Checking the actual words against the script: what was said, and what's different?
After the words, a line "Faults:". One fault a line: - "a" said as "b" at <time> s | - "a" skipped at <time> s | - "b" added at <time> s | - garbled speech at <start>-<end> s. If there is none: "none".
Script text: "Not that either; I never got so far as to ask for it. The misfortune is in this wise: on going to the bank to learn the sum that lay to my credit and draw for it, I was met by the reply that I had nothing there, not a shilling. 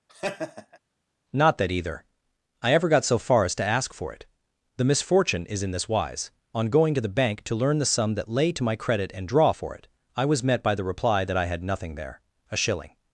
"Not that either; I ever got so far as to ask for it. The misfortune is in this wise: on going to the bank to learn the sum that lay to my credit and draw for it, I was met by the reply that I had nothing there, a shilling.
Faults:
- "never" said as "ever" at 2.7 s
- "not" skipped at 12.2 s